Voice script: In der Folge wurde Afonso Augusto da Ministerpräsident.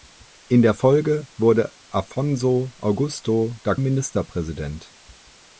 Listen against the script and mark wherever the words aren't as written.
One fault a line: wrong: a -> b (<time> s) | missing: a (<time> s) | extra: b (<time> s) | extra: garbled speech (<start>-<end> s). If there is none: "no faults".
no faults